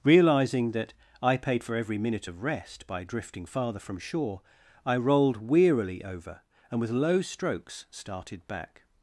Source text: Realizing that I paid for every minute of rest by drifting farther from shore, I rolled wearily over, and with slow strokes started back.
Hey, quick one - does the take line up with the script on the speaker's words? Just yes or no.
no